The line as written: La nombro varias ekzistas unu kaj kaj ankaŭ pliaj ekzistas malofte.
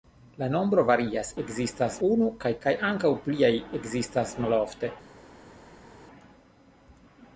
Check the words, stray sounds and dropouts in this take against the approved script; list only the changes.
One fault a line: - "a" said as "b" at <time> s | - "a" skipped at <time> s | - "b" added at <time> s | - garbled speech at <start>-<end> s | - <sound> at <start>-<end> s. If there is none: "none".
none